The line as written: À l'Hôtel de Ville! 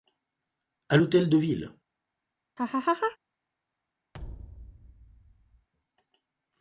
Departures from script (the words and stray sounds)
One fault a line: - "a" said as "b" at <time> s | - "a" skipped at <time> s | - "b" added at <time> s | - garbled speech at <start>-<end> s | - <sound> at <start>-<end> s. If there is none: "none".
- laugh at 2.6-3.2 s
- thud at 4.1-5.7 s